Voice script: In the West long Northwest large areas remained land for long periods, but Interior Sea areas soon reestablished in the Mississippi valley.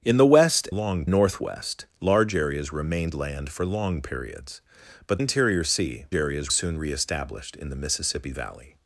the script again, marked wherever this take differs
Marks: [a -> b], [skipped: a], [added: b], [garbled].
In the West long Northwest large areas remained land for long periods, but Interior Sea areas soon reestablished in the Mississippi valley.